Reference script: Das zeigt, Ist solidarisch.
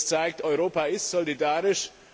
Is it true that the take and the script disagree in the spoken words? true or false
true